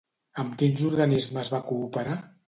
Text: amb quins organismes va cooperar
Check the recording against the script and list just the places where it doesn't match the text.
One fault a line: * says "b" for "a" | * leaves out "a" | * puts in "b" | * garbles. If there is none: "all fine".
all fine